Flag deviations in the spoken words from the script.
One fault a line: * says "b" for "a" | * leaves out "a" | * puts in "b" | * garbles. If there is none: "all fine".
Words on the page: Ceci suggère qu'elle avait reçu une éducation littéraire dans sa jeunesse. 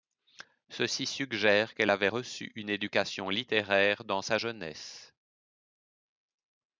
all fine